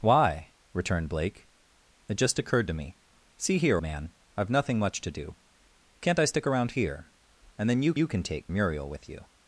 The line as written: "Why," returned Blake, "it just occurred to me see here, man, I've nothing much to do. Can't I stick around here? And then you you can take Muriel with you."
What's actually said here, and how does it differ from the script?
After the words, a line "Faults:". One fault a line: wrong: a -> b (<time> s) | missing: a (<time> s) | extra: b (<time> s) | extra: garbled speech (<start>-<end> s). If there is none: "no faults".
"Why," returned Blake, "it just occurred to me see here, man, I've nothing much to do. Can't I stick around here? And then you you can take Muriel with you."
Faults:
no faults